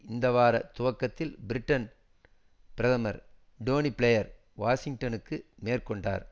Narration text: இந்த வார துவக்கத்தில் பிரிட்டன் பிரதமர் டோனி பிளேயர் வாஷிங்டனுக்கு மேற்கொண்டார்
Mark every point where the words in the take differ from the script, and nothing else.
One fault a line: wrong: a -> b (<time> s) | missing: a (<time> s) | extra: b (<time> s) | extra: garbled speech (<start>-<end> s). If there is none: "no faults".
no faults